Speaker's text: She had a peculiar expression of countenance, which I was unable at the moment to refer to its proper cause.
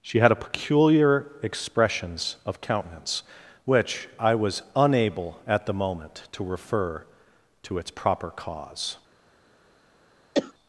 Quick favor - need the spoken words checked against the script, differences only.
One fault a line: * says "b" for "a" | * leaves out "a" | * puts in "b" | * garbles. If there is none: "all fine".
* says "expressions" for "expression"